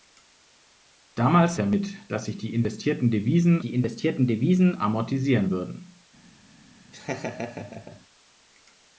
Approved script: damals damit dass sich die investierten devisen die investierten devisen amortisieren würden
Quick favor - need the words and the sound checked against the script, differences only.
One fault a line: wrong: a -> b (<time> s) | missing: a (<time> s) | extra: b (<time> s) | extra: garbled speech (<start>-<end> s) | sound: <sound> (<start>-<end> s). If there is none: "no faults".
sound: laugh (6.9-8.0 s)